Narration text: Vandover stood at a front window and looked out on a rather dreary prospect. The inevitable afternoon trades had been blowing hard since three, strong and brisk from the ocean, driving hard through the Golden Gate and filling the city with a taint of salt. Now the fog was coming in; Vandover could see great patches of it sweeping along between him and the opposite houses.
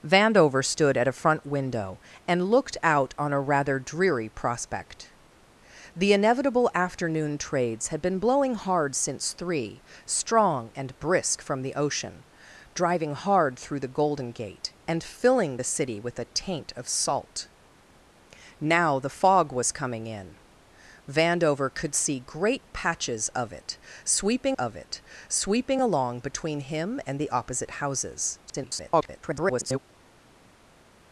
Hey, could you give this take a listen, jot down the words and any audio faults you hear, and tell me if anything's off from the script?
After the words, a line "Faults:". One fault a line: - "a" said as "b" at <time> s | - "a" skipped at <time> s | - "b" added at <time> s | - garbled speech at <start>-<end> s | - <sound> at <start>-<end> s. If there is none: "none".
Vandover stood at a front window and looked out on a rather dreary prospect. The inevitable afternoon trades had been blowing hard since three, strong and brisk from the ocean, driving hard through the Golden Gate and filling the city with a taint of salt. Now the fog was coming in; Vandover could see great patches of it sweeping of it sweeping along between him and the opposite houses. [garbled]
Faults:
- "of it sweeping" added at 24.5 s
- garbled speech at 28.5-29.8 s